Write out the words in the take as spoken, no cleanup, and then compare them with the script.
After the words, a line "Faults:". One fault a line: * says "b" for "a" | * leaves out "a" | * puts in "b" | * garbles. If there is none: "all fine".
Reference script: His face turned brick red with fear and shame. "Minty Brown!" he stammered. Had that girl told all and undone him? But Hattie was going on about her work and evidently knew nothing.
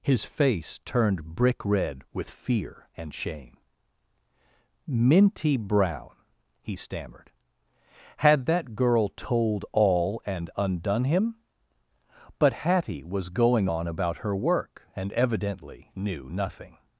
His face turned brick red with fear and shame. "Minty Brown!" he stammered. Had that girl told all and undone him? But Hattie was going on about her work and evidently knew nothing.
Faults:
all fine